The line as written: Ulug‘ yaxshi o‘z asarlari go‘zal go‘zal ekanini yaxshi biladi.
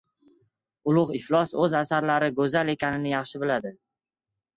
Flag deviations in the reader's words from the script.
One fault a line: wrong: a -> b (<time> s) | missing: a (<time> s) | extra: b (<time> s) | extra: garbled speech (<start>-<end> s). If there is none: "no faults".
wrong: yaxshi -> iflos (1.2 s)
missing: go‘zal (2.7 s)